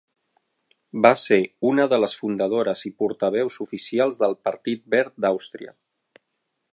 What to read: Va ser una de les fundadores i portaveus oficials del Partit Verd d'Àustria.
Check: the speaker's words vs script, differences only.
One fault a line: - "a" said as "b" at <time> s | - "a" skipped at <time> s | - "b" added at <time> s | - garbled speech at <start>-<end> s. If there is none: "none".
none